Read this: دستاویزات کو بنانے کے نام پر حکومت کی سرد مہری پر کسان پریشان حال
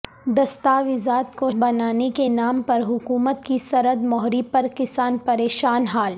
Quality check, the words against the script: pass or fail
pass